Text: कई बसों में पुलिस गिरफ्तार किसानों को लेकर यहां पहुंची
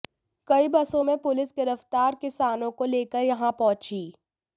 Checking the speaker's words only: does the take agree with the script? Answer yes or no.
yes